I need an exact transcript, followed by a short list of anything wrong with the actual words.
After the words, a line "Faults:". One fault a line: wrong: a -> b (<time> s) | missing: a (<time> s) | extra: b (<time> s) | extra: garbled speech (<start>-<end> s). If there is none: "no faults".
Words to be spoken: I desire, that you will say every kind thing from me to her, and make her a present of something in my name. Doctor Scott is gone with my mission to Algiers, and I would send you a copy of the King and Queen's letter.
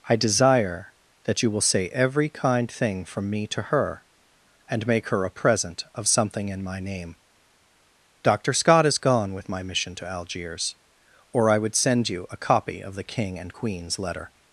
I desire, that you will say every kind thing from me to her, and make her a present of something in my name. Doctor Scott is gone with my mission to Algiers, or I would send you a copy of the King and Queen's letter.
Faults:
wrong: and -> or (11.3 s)